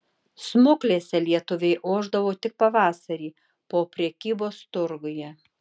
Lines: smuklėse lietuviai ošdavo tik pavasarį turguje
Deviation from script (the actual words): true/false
true